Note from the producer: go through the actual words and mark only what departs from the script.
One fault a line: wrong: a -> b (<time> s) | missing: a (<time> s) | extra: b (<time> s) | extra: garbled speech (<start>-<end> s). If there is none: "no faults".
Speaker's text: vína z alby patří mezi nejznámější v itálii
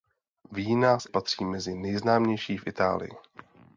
missing: alby (1.1 s)